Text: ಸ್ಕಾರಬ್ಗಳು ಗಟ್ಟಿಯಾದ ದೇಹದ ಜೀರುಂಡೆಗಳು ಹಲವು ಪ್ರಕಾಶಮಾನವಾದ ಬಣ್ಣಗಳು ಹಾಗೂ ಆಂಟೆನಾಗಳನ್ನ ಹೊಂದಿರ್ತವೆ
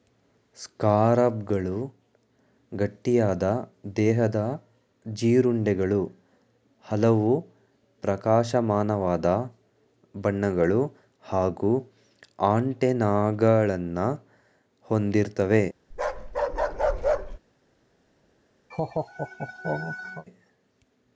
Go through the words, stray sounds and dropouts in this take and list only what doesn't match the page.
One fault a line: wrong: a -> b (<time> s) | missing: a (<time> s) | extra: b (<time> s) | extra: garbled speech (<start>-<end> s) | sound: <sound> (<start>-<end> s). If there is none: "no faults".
sound: bark (15.9-17.4 s)
sound: laugh (18.7-20.3 s)